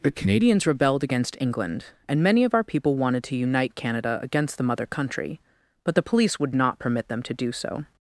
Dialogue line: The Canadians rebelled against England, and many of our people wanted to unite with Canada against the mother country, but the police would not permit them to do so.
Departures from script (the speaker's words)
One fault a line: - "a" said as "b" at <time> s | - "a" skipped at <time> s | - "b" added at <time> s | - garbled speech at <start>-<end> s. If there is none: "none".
- "with" skipped at 3.8 s